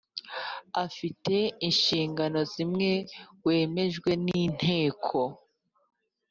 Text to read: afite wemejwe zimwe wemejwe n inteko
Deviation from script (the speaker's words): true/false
true